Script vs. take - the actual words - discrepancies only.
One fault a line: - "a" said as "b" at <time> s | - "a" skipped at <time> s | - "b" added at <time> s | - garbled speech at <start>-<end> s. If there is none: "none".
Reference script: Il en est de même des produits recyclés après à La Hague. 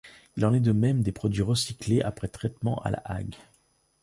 - "traitement" added at 2.3 s